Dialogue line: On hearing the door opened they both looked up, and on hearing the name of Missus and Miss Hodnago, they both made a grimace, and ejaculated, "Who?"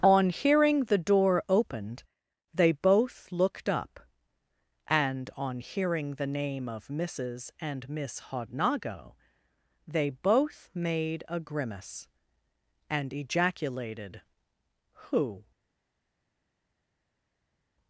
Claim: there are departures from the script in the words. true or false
false